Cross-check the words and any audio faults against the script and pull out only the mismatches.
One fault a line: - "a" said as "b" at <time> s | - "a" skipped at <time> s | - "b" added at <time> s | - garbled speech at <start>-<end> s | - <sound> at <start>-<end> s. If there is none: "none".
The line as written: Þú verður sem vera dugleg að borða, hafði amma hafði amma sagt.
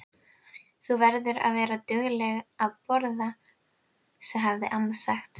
- "sem" said as "að" at 1.5 s
- "hafði amma" skipped at 5.0 s